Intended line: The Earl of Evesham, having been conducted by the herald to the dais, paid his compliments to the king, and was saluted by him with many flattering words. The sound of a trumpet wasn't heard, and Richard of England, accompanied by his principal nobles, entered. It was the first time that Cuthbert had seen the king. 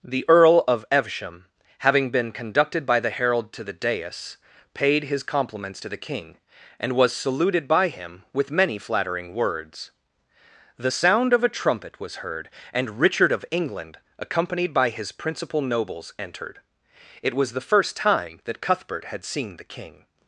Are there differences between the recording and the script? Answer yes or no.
yes